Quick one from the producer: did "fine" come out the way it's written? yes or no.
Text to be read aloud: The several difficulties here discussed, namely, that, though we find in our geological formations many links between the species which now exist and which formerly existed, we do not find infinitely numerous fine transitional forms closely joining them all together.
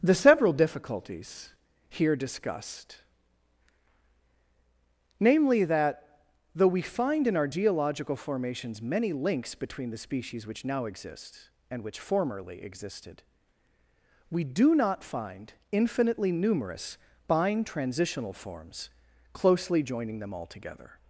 no